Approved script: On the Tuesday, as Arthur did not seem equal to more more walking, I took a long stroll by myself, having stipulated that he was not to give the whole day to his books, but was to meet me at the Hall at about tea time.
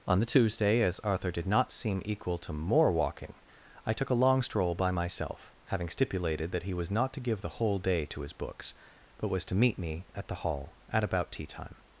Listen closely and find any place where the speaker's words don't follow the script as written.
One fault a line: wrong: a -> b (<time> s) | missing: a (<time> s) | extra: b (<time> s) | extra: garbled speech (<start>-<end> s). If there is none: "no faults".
missing: more (2.9 s)